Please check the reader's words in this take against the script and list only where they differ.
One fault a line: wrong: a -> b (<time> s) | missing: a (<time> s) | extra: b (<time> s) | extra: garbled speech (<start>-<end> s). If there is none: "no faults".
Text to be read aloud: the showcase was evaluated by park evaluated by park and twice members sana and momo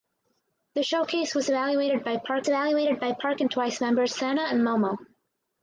no faults